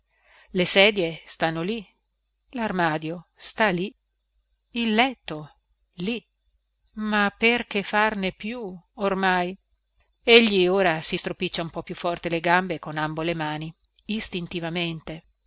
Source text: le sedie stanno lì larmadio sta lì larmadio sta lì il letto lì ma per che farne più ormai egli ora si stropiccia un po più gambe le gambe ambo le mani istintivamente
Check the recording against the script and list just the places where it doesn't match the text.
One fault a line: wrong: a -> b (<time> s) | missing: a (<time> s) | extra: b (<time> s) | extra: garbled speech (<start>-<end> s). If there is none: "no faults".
missing: larmadio sta lì (3.9 s)
wrong: gambe -> forte (11.9 s)
extra: con (12.8 s)